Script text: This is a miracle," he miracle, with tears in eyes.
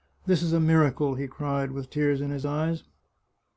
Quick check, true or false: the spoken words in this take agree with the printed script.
false